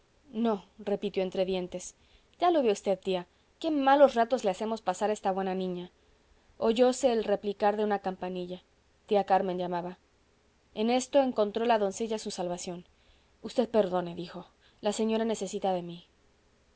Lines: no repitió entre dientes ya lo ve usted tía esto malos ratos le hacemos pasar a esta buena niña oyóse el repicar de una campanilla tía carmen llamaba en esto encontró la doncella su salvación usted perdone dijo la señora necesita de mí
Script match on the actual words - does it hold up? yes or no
no